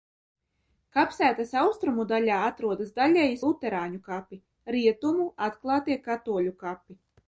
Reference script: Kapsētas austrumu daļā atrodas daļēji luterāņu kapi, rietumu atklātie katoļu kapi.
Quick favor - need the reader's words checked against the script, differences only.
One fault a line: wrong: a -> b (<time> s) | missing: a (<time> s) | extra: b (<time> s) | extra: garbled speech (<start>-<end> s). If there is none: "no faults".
no faults